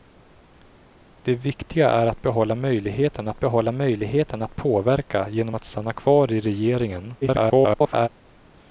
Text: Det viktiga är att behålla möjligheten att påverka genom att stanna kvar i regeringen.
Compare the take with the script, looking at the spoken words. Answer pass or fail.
fail